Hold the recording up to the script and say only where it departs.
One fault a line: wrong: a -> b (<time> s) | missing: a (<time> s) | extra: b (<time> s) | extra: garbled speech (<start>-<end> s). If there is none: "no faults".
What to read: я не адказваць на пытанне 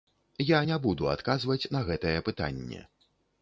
extra: буду (0.8 s)
extra: гэтае (1.9 s)